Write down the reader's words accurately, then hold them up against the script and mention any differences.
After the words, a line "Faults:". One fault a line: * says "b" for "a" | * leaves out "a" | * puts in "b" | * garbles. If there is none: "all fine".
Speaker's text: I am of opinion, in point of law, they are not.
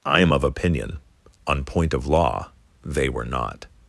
I am of opinion, on point of law, they were not.
Faults:
* says "on" for "in"
* says "were" for "are"